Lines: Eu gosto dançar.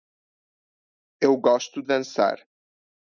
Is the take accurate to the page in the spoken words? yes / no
yes